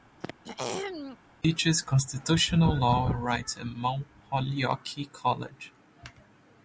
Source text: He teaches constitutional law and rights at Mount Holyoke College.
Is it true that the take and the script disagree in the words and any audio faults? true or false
true